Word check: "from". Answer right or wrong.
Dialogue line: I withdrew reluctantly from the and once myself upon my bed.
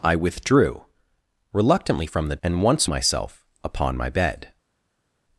right